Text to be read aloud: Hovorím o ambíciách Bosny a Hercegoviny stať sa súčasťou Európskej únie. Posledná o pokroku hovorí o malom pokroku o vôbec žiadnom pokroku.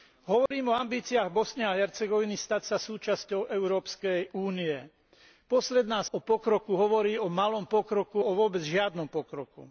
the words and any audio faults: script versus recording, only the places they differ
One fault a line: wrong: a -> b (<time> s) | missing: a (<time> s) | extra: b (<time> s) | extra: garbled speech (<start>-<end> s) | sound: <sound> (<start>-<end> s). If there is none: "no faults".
sound: dropout (0.5-0.5 s)